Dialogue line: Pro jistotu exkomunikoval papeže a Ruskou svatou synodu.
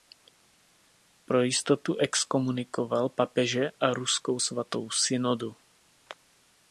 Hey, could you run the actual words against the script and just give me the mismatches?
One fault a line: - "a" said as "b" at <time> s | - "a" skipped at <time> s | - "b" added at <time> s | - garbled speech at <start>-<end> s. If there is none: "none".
none